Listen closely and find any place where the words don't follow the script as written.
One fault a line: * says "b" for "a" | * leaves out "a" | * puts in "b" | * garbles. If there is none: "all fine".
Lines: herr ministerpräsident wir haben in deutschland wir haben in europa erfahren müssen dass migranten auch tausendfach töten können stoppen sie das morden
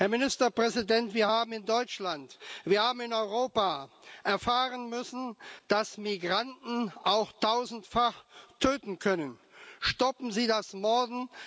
all fine